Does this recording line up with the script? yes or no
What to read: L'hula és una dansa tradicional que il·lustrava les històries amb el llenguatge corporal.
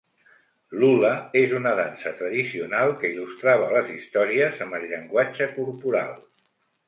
yes